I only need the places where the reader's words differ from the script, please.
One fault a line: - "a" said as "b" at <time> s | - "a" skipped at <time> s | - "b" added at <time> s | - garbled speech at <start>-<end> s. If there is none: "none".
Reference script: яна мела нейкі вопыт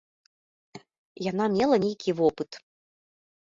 none